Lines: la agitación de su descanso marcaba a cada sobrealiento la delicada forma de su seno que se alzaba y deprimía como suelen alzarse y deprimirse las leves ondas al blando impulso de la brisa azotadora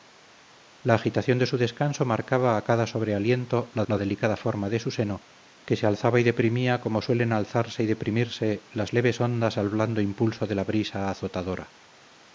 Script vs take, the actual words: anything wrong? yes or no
yes